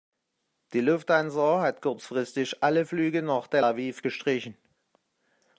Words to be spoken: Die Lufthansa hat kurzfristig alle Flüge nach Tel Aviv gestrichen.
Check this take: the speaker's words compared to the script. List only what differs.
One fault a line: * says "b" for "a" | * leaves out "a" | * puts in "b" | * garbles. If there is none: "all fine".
all fine